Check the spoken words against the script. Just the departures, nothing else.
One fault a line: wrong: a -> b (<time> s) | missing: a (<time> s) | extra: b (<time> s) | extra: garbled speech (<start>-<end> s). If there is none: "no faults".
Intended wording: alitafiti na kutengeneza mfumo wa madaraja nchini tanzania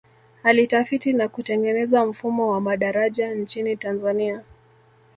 no faults